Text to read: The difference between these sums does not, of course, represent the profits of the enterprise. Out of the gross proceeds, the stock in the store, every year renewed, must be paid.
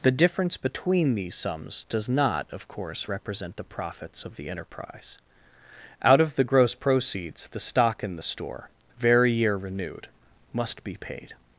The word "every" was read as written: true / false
false